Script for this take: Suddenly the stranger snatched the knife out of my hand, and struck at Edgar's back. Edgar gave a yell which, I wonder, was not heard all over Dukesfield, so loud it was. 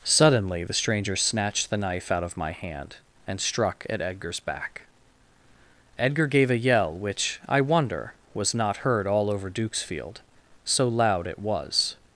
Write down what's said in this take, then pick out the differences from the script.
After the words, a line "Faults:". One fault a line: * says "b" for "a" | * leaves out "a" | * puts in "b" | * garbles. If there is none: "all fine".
Suddenly the stranger snatched the knife out of my hand, and struck at Edgar's back. Edgar gave a yell which, I wonder, was not heard all over Dukesfield, so loud it was.
Faults:
all fine